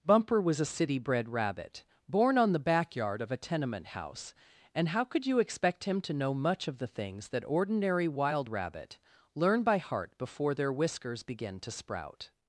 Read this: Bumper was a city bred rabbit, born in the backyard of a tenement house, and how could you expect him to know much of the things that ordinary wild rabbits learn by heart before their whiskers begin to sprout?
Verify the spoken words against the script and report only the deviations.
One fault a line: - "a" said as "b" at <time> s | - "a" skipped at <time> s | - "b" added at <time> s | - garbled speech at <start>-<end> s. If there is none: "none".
- "in" said as "on" at 2.4 s
- "rabbits" said as "rabbit" at 8.5 s